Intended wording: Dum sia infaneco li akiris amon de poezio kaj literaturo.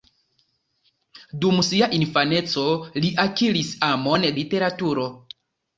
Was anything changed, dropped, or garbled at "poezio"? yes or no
yes